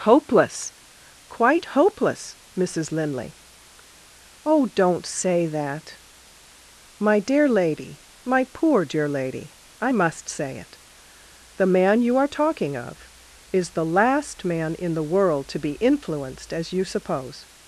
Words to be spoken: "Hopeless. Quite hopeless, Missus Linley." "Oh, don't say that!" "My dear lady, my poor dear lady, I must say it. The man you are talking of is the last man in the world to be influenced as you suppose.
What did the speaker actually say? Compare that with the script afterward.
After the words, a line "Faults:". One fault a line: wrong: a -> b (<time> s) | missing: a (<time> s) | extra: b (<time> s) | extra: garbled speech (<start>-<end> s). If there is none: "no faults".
"Hopeless. Quite hopeless, Missus Linley." "Oh, don't say that!" "My dear lady, my poor dear lady, I must say it. The man you are talking of is the last man in the world to be influenced as you suppose.
Faults:
no faults